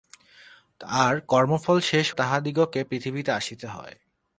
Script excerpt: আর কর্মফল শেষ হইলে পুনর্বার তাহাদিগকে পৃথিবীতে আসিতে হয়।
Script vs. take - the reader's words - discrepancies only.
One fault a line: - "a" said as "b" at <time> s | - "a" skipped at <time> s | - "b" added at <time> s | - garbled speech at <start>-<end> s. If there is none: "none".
- "হইলে পুনর্বার" skipped at 2.1 s